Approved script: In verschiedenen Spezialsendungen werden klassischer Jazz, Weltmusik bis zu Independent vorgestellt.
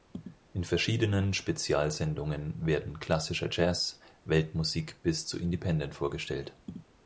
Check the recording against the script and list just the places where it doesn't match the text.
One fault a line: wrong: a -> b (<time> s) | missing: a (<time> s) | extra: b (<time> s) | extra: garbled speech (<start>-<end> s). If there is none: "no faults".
no faults